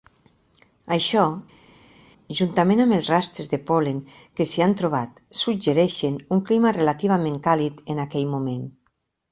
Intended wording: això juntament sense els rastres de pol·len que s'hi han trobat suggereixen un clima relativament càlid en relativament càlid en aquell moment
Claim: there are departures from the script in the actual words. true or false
true